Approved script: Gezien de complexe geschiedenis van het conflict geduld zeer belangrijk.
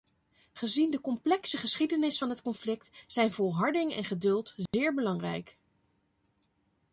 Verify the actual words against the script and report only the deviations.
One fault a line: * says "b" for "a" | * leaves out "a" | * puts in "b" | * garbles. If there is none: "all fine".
* puts in "zijn volharding en"